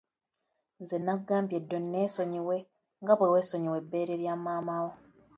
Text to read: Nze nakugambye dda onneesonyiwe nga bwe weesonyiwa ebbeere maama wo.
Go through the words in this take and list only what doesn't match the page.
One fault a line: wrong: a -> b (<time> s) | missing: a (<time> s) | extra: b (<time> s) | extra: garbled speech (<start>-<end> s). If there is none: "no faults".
extra: lya (4.2 s)